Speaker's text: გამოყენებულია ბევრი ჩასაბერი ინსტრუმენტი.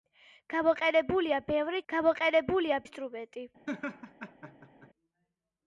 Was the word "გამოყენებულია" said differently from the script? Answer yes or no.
no